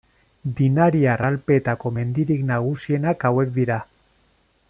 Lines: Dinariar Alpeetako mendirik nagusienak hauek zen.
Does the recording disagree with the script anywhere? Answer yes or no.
yes